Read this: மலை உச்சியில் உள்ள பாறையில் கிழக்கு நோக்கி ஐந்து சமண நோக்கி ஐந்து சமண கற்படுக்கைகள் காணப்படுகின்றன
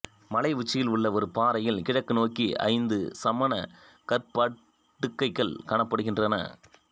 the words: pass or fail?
fail